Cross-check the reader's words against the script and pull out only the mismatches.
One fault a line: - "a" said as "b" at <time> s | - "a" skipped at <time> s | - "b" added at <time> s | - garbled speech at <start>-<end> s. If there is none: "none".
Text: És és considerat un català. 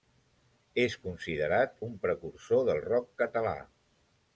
- "és" skipped at 0.9 s
- "precursor del rock" added at 2.1 s